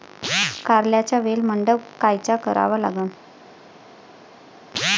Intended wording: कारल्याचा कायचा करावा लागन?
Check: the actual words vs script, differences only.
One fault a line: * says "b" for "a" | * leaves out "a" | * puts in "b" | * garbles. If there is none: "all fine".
* puts in "वेल मंडप"